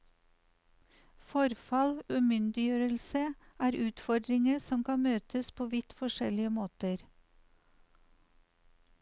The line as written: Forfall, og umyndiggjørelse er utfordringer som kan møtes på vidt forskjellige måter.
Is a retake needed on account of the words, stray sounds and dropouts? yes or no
no